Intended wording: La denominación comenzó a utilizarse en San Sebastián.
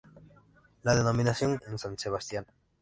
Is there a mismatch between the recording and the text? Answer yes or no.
yes